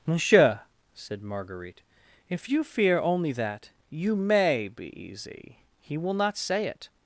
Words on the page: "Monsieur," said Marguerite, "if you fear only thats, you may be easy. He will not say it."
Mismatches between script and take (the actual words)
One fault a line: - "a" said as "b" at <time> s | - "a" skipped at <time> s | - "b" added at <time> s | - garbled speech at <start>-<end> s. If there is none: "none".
- "thats" said as "that" at 3.3 s